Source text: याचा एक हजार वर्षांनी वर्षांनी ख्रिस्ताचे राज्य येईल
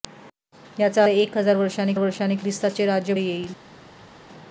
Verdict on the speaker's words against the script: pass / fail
pass